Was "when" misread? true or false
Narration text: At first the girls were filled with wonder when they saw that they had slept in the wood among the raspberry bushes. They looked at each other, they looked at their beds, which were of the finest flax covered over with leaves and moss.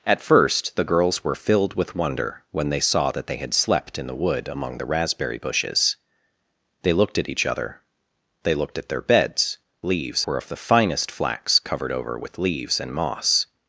false